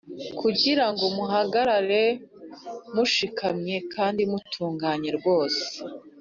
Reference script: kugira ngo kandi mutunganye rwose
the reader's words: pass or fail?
fail